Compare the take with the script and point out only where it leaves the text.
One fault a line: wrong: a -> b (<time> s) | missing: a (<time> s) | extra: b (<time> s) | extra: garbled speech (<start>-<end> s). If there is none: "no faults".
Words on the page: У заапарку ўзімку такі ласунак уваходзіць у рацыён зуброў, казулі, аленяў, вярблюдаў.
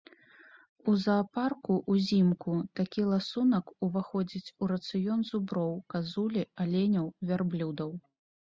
no faults